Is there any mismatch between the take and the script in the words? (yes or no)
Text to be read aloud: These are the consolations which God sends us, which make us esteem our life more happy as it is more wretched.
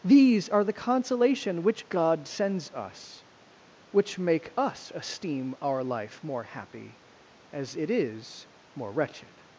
yes